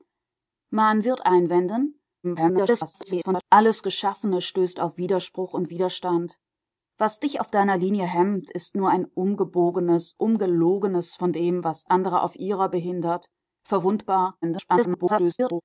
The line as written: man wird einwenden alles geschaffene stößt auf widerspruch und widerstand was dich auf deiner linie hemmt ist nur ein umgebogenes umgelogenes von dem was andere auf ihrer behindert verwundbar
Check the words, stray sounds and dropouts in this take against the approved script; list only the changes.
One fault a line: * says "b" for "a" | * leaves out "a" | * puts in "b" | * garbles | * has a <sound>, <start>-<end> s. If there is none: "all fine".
* garbles
* garbles